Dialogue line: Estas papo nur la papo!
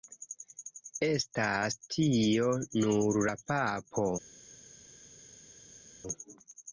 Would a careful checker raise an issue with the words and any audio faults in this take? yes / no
yes